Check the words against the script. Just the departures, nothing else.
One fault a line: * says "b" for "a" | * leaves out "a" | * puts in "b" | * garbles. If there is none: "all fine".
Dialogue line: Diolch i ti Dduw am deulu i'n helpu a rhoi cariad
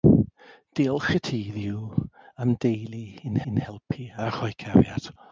* puts in "i'n"